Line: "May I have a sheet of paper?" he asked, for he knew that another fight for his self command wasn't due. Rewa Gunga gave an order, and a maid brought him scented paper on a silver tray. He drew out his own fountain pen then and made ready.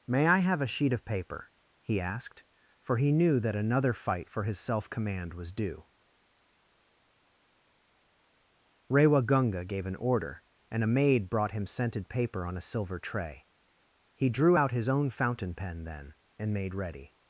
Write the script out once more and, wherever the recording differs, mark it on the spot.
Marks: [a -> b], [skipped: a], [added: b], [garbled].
"May I have a sheet of paper?" he asked, for he knew that another fight for his self command [wasn't -> was] due. Rewa Gunga gave an order, and a maid brought him scented paper on a silver tray. He drew out his own fountain pen then and made ready.